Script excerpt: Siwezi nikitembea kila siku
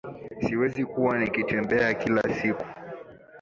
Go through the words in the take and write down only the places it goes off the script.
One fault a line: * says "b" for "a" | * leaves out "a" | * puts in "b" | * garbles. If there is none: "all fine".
* puts in "kuwa"